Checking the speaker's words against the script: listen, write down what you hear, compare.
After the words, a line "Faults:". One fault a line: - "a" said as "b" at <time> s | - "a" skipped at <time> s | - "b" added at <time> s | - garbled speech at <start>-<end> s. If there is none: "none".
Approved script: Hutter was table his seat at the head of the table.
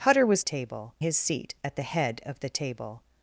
Hutter was table his seat at the head of the table.
Faults:
none